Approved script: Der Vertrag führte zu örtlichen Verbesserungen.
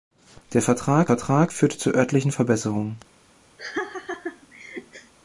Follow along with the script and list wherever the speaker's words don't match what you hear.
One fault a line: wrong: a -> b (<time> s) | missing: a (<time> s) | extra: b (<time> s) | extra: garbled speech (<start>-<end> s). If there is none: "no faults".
extra: Vertrag (1.0 s)